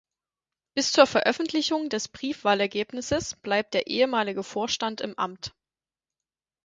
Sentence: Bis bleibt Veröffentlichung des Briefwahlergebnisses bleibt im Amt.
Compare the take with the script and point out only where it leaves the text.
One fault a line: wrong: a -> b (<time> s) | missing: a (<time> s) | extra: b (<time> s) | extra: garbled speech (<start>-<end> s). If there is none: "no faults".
wrong: bleibt -> zur (0.9 s)
extra: der ehemalige Vorstand (3.8 s)